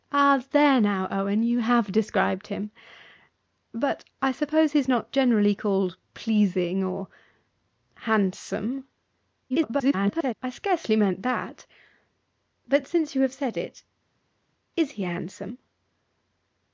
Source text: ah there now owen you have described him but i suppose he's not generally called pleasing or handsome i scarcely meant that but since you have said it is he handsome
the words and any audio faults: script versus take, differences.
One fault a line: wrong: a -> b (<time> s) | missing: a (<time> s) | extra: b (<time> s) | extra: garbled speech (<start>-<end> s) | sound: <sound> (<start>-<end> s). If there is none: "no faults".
extra: garbled speech (9.5-10.3 s)